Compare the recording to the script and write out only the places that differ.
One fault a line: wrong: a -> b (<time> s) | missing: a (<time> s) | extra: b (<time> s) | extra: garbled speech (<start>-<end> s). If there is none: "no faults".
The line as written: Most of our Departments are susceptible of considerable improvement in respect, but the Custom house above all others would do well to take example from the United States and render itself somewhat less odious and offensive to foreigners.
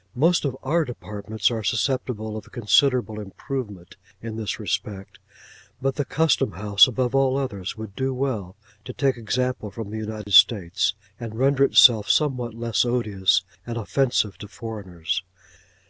extra: this (4.3 s)